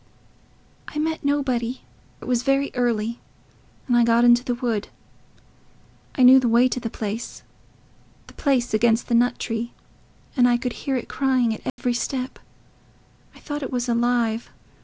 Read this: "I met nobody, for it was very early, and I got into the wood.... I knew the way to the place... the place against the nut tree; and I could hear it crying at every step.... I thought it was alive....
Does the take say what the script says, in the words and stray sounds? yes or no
no